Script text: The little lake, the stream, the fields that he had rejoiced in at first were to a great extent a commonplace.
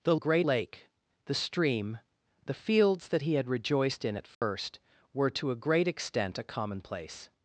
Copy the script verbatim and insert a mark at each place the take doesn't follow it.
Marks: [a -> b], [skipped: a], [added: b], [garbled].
The [little -> great] lake, the stream, the fields that he had rejoiced in at first were to a great extent a commonplace.